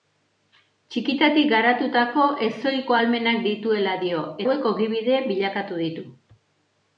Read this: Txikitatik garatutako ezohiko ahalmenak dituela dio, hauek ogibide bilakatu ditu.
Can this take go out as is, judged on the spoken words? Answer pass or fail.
pass